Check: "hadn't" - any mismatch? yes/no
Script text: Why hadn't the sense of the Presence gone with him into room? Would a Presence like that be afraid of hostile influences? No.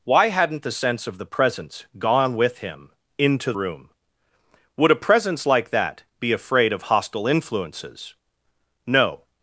no